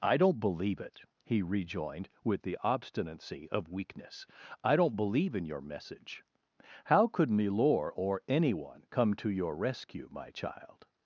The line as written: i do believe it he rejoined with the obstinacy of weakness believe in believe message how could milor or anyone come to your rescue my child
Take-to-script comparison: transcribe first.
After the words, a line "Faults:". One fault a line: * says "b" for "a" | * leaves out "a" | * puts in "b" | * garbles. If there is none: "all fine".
i don't believe it he rejoined with the obstinacy of weakness i don't believe in your message how could milor or anyone come to your rescue my child
Faults:
* says "don't" for "do"
* puts in "i don't"
* says "your" for "believe"